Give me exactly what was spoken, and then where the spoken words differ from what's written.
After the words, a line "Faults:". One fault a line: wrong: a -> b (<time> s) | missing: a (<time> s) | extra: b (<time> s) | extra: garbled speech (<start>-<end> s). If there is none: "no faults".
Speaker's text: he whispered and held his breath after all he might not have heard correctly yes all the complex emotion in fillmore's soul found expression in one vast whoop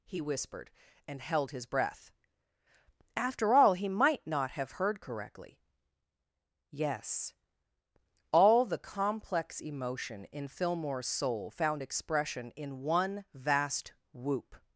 he whispered and held his breath after all he might not have heard correctly yes all the complex emotion in fillmore's soul found expression in one vast whoop
Faults:
no faults